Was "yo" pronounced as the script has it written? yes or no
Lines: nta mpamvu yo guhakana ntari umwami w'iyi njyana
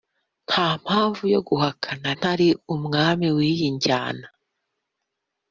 yes